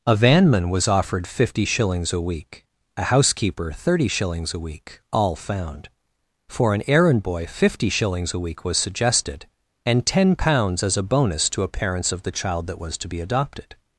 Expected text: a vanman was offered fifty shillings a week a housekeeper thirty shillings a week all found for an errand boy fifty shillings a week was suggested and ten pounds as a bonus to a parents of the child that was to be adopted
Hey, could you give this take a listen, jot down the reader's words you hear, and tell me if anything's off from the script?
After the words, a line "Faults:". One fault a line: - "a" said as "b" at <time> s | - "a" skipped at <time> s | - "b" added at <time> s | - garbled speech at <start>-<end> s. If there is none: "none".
a vanman was offered fifty shillings a week a housekeeper thirty shillings a week all found for an errand boy fifty shillings a week was suggested and ten pounds as a bonus to a parents of the child that was to be adopted
Faults:
none